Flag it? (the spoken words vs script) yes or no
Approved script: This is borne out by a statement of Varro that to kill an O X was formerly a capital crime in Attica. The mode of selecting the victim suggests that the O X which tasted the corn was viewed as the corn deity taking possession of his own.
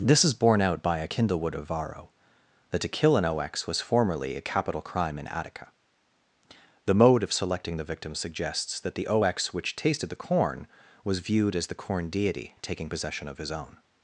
yes